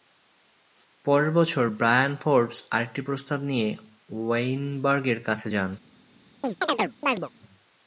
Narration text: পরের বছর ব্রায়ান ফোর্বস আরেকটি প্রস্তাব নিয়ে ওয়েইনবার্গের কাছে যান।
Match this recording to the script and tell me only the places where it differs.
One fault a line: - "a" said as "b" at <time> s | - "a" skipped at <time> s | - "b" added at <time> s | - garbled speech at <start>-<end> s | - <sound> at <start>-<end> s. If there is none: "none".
- chirp at 6.4-7.3 s